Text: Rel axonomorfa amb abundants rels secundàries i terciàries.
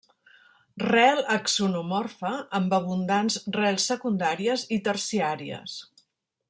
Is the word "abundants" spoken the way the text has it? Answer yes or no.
yes